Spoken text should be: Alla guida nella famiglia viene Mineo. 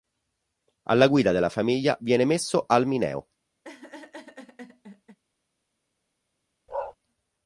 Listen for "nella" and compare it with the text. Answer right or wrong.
wrong